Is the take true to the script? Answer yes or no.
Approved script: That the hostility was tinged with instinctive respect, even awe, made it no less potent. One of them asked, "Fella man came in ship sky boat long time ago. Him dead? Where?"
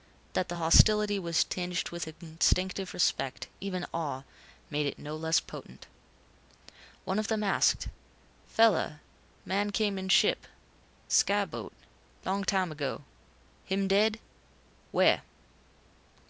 yes